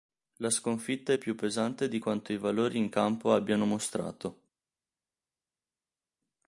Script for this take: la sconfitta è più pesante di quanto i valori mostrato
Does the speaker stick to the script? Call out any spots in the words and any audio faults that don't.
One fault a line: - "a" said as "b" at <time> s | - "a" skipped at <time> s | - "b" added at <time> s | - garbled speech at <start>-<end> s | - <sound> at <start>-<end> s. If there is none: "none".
- "in campo abbiano" added at 2.8 s